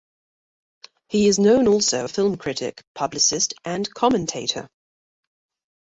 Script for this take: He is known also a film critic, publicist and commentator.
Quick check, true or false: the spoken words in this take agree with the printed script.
true